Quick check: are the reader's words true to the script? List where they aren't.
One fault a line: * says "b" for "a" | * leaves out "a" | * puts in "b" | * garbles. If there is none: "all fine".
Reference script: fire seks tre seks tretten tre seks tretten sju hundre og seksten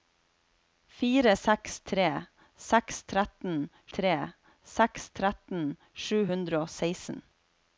all fine